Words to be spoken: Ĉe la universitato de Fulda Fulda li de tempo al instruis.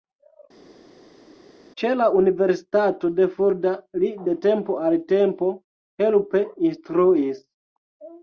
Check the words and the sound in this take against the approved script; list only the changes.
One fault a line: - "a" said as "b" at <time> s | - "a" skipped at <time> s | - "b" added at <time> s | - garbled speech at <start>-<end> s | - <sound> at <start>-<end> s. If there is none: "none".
- "Fulda" skipped at 3.7 s
- "tempo helpe" added at 5.1 s